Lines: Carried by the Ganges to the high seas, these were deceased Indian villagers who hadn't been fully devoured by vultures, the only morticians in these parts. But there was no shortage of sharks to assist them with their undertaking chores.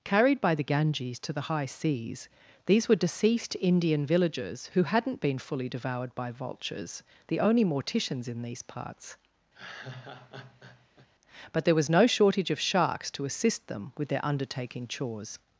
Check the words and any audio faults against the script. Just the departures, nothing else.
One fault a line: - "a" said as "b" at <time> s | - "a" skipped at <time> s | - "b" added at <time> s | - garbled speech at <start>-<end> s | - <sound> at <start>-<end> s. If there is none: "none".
- laugh at 9.5-11.1 s